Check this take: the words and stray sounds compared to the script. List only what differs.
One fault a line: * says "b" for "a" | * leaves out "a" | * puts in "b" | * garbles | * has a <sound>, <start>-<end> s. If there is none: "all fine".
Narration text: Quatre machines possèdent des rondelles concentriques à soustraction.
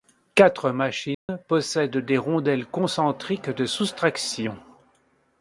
* has a dropout, 1.1-1.3 s
* says "de" for "à"